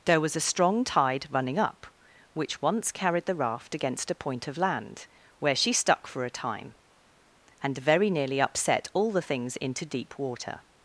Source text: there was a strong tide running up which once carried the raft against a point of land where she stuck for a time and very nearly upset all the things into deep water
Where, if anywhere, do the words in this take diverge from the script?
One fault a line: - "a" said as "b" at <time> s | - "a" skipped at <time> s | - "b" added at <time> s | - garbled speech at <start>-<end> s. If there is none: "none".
none